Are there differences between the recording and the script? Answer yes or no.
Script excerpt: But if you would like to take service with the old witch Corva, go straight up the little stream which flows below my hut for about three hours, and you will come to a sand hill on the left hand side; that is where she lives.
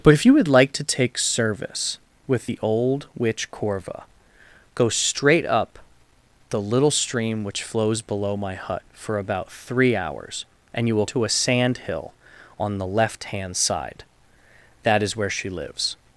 yes